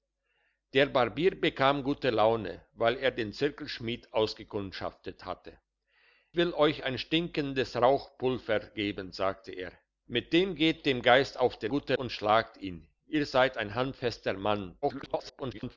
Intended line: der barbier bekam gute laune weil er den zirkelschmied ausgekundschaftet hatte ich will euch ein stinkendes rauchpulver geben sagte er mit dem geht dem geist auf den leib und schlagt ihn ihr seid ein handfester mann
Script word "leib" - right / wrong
wrong